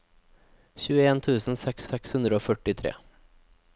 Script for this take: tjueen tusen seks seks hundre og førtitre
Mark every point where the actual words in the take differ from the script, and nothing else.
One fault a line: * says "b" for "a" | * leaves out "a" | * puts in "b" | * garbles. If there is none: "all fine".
all fine